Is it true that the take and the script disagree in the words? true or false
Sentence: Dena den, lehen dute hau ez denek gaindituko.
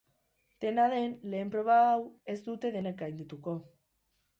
true